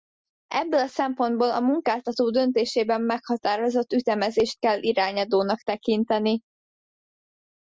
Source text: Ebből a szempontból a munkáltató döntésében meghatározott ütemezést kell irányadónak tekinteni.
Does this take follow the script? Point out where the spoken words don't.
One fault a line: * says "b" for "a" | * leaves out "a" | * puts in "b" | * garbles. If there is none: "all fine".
all fine